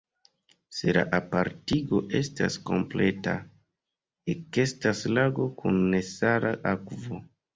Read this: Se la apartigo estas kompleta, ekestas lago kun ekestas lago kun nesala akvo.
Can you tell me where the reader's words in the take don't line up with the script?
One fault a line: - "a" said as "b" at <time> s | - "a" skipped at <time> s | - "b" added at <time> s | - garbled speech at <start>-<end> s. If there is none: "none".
- "ekestas lago kun" skipped at 5.8 s